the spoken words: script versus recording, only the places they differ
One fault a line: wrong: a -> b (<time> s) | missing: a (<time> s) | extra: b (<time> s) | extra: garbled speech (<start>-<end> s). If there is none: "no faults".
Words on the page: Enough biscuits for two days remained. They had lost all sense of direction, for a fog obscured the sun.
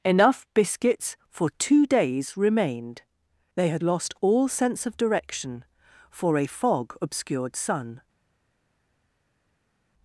missing: the (7.6 s)